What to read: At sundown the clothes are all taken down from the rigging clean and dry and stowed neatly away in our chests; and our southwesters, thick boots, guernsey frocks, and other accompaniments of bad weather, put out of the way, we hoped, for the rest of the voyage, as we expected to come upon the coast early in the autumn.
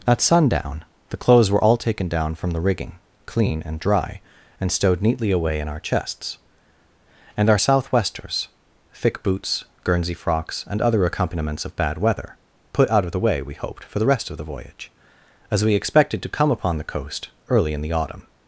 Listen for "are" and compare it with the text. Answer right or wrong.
wrong